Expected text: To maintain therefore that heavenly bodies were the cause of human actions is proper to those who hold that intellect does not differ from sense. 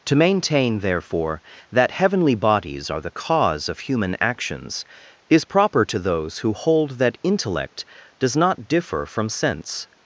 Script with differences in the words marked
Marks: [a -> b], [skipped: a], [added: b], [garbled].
To maintain therefore that heavenly bodies [were -> are] the cause of human actions is proper to those who hold that intellect does not differ from sense.